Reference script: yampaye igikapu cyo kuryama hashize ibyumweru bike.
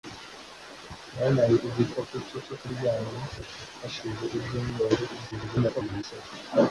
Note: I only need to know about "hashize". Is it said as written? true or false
true